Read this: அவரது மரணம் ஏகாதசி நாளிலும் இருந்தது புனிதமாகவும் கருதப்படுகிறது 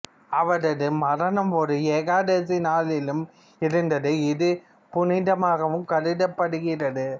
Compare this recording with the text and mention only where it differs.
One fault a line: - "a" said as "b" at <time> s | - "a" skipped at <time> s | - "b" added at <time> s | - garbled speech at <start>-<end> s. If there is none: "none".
- "ஒரு" added at 1.6 s
- "இது" added at 4.3 s